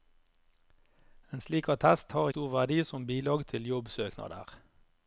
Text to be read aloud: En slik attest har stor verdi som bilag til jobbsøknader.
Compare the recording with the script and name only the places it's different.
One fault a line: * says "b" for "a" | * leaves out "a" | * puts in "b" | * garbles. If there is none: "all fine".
all fine